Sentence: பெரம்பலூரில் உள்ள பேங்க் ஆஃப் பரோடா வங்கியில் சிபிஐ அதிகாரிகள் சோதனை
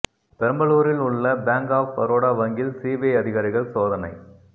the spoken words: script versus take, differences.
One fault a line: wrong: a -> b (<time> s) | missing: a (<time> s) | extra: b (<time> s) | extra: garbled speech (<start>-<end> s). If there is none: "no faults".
no faults